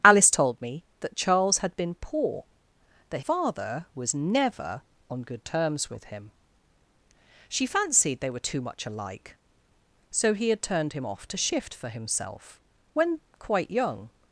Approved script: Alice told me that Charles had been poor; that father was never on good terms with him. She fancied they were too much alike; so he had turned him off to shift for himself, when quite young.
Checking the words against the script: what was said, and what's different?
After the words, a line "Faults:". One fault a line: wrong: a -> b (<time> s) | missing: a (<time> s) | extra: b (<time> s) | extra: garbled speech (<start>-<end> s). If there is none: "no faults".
Alice told me that Charles had been poor; that father was never on good terms with him. She fancied they were too much alike; so he had turned him off to shift for himself, when quite young.
Faults:
no faults